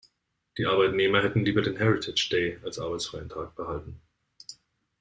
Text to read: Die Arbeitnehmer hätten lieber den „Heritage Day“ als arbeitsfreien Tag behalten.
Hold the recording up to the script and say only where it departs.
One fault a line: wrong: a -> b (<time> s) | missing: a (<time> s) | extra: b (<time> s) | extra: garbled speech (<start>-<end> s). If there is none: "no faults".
no faults